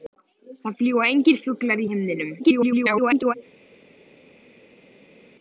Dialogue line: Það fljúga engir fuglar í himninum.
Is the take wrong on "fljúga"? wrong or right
right